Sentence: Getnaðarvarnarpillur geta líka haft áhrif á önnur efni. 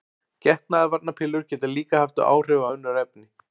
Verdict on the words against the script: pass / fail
pass